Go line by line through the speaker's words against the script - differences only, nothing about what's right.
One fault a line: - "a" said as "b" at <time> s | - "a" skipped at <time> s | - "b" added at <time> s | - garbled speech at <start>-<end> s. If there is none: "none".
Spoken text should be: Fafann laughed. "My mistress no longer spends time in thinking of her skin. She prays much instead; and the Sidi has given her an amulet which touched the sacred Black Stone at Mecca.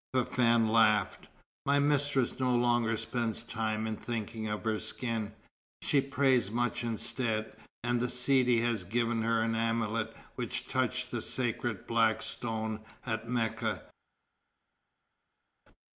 none